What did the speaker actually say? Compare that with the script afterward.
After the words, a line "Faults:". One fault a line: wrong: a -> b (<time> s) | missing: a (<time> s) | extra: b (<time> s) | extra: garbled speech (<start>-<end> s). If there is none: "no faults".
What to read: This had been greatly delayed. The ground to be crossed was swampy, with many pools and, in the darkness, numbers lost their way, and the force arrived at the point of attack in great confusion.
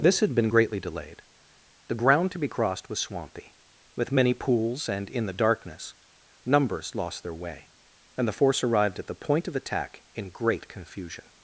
This had been greatly delayed. The ground to be crossed was swampy, with many pools and, in the darkness, numbers lost their way, and the force arrived at the point of attack in great confusion.
Faults:
no faults